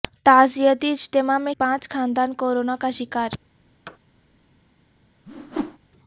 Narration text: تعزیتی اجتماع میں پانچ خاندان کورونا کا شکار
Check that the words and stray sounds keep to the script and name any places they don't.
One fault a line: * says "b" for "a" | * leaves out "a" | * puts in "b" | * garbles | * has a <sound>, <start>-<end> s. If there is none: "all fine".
* has a thud, 3.9-4.0 s
* has a whoosh, 5.2-5.8 s